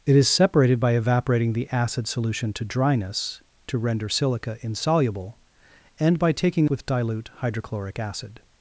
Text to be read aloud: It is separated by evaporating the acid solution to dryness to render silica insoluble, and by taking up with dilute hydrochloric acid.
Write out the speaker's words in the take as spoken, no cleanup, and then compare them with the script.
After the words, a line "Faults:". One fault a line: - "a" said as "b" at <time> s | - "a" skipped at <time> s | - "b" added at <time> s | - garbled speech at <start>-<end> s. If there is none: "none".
It is separated by evaporating the acid solution to dryness to render silica insoluble, and by taking with dilute hydrochloric acid.
Faults:
- "up" skipped at 6.7 s